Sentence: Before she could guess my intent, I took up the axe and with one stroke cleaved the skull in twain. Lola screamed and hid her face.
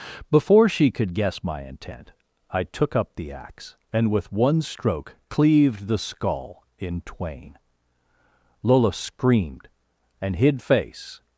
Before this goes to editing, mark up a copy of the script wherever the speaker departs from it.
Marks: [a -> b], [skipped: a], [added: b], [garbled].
Before she could guess my intent, I took up the axe and with one stroke cleaved the skull in twain. Lola screamed and hid [skipped: her] face.